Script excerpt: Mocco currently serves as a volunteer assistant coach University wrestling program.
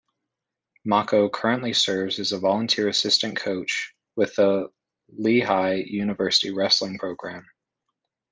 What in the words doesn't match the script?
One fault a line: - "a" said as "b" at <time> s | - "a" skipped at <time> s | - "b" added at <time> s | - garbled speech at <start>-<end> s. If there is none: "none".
- "with the Lehigh" added at 4.1 s